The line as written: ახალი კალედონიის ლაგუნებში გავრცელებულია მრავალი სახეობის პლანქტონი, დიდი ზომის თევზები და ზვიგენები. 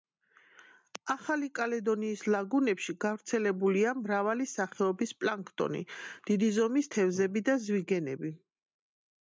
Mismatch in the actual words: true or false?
false